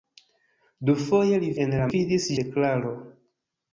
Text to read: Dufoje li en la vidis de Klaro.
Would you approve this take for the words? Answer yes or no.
yes